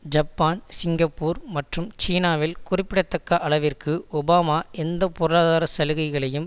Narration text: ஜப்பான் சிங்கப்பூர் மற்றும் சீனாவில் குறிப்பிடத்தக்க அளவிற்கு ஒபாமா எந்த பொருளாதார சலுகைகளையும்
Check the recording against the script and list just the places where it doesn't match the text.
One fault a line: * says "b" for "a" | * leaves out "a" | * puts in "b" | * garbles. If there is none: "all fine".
all fine